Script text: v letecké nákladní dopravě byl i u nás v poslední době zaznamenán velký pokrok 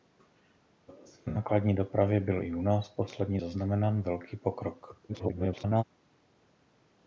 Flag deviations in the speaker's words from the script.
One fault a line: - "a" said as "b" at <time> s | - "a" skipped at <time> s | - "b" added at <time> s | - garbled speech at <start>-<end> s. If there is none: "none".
- "době" skipped at 3.4 s
- garbled speech at 5.1-5.8 s